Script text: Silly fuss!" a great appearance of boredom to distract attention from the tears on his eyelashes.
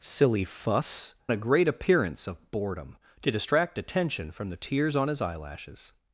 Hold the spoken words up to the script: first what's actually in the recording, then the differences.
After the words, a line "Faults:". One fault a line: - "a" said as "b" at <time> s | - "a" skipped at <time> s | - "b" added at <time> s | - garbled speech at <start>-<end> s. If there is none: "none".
Silly fuss!" a great appearance of boredom to distract attention from the tears on his eyelashes.
Faults:
none